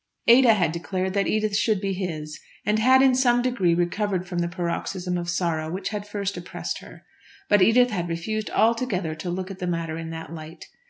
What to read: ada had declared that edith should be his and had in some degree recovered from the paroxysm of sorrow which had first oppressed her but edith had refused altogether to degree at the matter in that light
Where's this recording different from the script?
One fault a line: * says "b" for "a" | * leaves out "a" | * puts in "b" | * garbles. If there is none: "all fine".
* says "look" for "degree"